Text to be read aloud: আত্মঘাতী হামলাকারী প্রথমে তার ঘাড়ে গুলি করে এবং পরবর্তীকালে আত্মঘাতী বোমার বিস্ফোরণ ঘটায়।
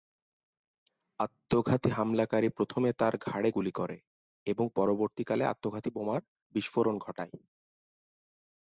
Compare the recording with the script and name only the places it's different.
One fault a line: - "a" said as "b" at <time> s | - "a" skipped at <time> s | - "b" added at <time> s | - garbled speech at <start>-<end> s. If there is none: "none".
none